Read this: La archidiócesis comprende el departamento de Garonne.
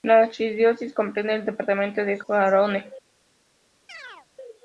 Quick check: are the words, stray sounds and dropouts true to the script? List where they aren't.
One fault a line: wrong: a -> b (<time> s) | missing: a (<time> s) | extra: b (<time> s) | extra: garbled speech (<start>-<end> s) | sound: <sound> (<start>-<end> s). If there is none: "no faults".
sound: chirp (3.9-4.3 s)